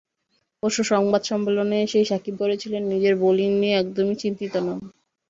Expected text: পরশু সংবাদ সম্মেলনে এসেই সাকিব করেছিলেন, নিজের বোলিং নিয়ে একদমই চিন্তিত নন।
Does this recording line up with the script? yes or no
yes